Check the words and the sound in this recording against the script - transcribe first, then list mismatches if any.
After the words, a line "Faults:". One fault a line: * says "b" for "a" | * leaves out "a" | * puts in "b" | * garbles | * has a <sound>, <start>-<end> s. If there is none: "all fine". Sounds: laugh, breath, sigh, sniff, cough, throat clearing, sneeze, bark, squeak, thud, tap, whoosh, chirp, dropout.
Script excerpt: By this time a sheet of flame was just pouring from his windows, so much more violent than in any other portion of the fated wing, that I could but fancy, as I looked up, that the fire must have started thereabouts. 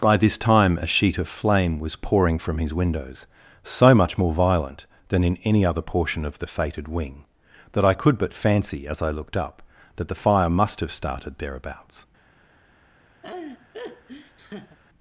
By this time a sheet of flame was pouring from his windows, so much more violent than in any other portion of the fated wing, that I could but fancy, as I looked up, that the fire must have started thereabouts.
Faults:
* leaves out "just"
* has a laugh, 13.2-14.8 s